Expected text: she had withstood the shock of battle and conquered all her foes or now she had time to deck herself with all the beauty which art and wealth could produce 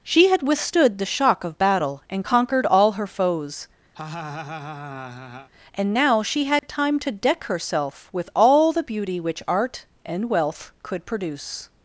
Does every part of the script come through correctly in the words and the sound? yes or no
no